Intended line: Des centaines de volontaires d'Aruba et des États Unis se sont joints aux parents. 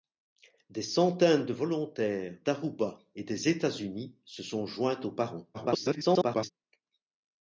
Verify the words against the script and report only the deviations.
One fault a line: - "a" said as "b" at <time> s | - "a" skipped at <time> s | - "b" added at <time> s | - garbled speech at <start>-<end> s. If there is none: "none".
- garbled speech at 5.5-6.5 s